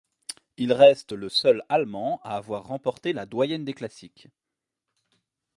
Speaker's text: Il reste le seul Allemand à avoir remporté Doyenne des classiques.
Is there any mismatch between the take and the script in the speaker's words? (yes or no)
yes